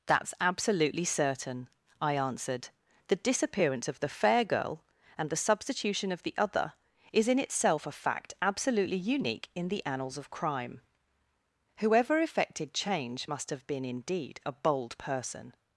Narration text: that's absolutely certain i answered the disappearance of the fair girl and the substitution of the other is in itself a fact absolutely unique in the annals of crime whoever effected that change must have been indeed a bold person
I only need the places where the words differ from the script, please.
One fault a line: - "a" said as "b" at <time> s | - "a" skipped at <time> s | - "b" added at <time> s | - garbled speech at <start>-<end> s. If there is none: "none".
- "that" skipped at 12.7 s